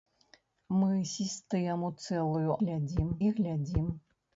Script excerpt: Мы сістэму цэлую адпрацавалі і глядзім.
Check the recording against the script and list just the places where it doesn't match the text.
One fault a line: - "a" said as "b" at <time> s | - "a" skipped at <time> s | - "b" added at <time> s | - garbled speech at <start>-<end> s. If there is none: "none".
- "адпрацавалі" said as "глядзім" at 2.6 s